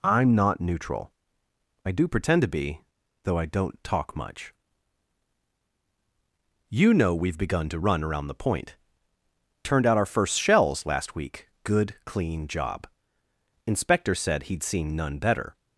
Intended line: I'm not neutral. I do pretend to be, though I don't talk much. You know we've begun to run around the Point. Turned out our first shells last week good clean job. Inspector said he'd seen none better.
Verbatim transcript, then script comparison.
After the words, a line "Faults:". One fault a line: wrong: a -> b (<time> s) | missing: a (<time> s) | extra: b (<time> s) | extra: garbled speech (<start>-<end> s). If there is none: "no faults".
I'm not neutral. I do pretend to be, though I don't talk much. You know we've begun to run around the Point. Turned out our first shells last week good clean job. Inspector said he'd seen none better.
Faults:
no faults